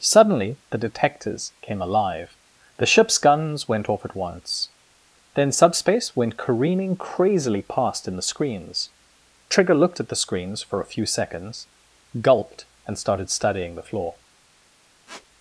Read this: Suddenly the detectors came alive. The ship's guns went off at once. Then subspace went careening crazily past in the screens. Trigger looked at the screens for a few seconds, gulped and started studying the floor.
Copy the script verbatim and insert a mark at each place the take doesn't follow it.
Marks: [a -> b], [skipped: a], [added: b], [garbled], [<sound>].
Suddenly the detectors came alive. The ship's guns went off at once. Then subspace went careening crazily past in the screens. Trigger looked at the screens for a few seconds, gulped and started studying the floor. [squeak]